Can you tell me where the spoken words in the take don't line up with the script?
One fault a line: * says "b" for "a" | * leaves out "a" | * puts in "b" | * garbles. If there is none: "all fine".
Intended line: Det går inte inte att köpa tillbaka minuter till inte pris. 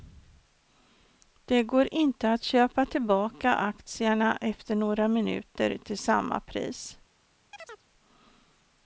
* leaves out "inte"
* puts in "aktierna efter några"
* says "samma" for "inte"